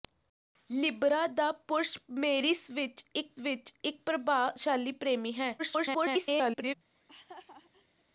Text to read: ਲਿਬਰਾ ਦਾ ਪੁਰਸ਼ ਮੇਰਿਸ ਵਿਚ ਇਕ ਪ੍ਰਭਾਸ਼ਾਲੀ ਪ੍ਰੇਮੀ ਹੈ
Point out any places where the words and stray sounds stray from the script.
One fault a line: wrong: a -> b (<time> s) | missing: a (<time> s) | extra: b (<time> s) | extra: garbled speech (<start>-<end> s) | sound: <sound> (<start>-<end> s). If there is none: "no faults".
extra: ਵਿਚ ਇਕ (3.4 s)
extra: garbled speech (5.6-6.7 s)
sound: laugh (6.9-8.0 s)